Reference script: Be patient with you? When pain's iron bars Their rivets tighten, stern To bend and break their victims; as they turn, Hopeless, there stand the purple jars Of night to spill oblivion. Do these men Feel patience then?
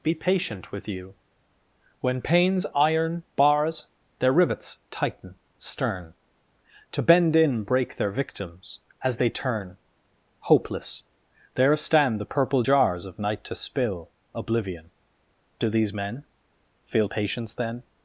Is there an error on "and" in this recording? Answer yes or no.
yes